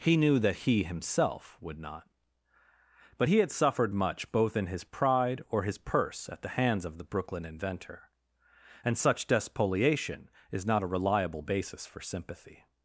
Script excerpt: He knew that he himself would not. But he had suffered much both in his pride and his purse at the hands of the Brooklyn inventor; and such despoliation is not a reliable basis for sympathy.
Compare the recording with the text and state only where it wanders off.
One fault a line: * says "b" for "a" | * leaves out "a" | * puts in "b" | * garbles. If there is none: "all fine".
* says "or" for "and"